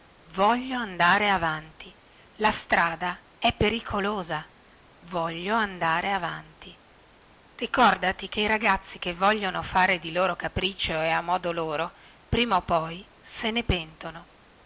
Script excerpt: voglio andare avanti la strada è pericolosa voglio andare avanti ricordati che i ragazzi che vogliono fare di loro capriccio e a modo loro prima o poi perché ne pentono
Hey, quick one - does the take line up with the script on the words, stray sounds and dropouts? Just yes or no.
no